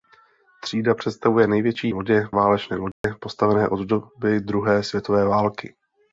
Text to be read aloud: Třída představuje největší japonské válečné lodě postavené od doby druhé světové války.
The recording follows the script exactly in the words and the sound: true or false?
false